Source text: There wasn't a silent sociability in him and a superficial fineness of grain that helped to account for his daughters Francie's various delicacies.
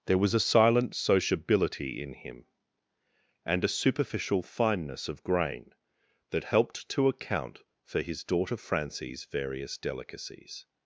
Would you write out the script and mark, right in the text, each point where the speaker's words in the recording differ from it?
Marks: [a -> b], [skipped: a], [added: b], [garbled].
There [wasn't -> was] a silent sociability in him and a superficial fineness of grain that helped to account for his [daughters -> daughter] Francie's various delicacies.